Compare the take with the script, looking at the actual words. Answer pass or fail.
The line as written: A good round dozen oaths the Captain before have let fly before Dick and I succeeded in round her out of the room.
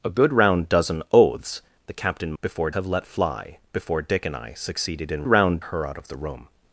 pass